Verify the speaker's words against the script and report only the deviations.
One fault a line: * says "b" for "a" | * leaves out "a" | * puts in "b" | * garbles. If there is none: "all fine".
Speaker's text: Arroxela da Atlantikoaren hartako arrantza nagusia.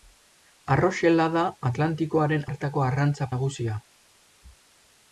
all fine